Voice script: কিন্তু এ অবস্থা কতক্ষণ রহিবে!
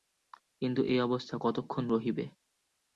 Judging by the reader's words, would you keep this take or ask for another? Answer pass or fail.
pass